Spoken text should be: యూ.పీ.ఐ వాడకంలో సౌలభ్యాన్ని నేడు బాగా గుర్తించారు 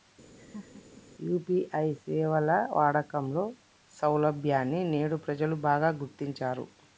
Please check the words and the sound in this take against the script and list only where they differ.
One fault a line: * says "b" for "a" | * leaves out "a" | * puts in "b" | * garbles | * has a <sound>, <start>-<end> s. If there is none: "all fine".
* has a laugh, 0.4-1.1 s
* puts in "సేవల"
* puts in "ప్రజలు"